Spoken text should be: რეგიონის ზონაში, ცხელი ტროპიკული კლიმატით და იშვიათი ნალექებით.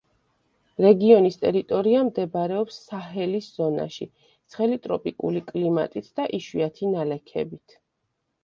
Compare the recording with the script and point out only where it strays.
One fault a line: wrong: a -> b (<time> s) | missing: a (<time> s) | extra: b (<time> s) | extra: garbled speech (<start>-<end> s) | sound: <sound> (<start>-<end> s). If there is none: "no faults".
extra: ტერიტორია მდებარეობს საჰელის (1.4 s)